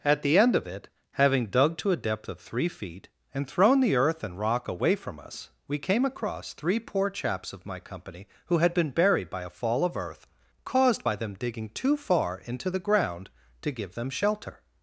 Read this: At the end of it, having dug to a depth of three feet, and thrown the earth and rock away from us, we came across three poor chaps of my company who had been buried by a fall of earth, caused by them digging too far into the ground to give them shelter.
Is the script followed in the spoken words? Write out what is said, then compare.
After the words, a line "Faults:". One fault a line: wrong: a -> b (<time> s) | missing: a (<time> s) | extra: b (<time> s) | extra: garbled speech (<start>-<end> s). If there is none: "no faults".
At the end of it, having dug to a depth of three feet, and thrown the earth and rock away from us, we came across three poor chaps of my company who had been buried by a fall of earth, caused by them digging too far into the ground to give them shelter.
Faults:
no faults